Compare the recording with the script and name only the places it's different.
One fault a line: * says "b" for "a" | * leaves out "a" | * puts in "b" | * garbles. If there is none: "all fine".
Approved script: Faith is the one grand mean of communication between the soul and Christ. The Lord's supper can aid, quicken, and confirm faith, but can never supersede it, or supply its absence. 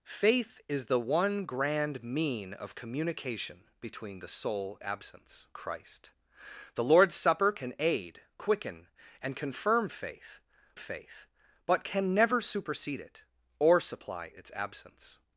* says "absence" for "and"
* puts in "faith"